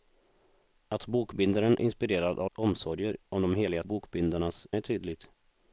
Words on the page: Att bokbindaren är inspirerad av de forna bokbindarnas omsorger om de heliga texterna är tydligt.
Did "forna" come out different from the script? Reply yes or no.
yes